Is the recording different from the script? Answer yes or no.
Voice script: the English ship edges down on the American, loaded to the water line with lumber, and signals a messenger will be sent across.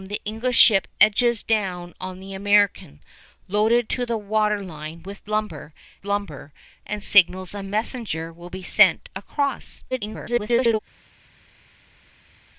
yes